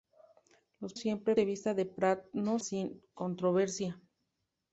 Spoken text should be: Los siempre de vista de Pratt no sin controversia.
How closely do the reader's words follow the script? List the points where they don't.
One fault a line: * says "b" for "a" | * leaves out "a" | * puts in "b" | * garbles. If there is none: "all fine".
all fine